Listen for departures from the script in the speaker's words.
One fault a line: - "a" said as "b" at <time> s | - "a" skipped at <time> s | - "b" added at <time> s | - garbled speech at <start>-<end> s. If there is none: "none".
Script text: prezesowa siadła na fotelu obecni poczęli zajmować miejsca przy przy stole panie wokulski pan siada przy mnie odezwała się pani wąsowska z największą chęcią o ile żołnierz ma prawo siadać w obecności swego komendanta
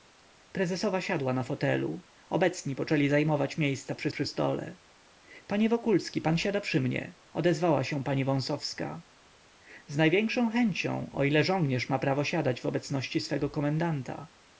none